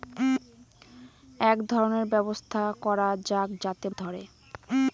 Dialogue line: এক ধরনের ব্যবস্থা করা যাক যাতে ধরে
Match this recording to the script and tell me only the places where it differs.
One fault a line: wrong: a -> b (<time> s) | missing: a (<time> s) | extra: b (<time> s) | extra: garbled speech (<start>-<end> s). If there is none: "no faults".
no faults